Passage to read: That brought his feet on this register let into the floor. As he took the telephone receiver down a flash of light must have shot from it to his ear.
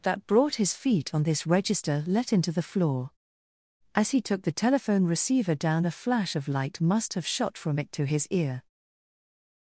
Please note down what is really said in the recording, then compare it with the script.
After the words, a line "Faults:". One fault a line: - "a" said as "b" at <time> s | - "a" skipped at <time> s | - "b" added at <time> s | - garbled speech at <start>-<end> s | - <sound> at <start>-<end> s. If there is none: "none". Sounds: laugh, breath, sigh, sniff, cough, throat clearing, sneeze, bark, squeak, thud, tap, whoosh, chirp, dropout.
That brought his feet on this register let into the floor. As he took the telephone receiver down a flash of light must have shot from it to his ear.
Faults:
none